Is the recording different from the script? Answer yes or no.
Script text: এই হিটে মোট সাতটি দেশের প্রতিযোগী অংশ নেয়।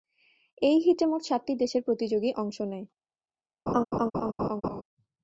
no